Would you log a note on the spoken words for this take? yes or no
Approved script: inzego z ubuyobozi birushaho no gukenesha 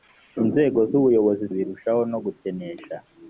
no